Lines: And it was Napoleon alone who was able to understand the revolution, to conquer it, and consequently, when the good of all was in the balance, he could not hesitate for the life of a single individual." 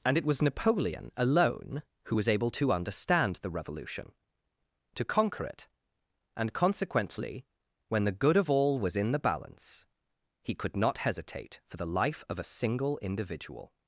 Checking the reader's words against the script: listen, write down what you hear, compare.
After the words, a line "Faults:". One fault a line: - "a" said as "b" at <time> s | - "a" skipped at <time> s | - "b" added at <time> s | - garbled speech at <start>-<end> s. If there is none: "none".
And it was Napoleon alone who was able to understand the revolution, to conquer it, and consequently, when the good of all was in the balance, he could not hesitate for the life of a single individual."
Faults:
none